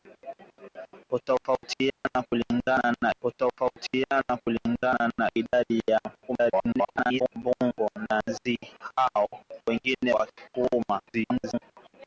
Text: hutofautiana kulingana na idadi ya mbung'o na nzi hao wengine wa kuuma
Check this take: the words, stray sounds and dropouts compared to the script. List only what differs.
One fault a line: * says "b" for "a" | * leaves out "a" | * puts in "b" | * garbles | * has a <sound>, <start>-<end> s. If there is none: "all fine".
* has a dropout, 1.9-2.1 s
* puts in "hutofautiana kulingana na"
* garbles
* garbles